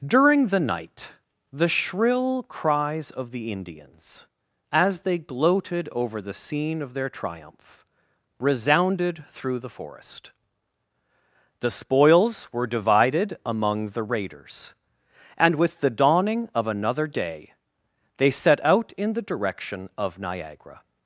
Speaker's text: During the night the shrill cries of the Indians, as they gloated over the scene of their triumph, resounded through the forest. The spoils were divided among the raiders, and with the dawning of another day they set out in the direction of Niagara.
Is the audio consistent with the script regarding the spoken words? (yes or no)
yes